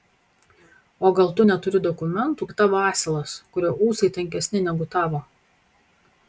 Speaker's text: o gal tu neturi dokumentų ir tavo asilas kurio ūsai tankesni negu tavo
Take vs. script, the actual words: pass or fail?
pass